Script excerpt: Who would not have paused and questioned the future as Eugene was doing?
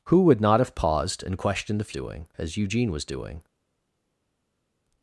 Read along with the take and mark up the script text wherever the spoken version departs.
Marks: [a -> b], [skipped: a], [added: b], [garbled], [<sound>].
Who would not have paused and questioned the [future -> doing] as Eugene was doing?